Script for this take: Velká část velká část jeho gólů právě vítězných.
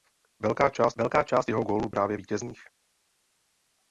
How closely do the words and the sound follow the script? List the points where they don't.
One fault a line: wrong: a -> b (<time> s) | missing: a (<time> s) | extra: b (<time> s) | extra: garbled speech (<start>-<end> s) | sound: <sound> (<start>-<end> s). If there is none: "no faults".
no faults